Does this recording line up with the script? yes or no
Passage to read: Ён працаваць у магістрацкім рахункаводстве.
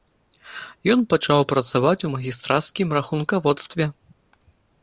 no